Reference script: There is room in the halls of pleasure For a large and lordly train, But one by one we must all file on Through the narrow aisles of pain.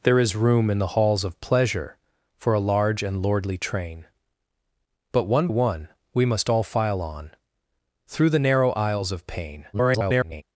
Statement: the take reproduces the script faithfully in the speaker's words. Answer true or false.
false